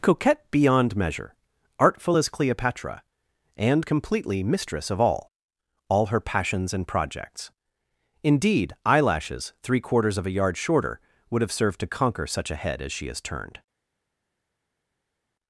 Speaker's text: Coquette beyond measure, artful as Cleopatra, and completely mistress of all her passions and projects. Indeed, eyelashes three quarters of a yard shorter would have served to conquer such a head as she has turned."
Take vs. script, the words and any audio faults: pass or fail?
fail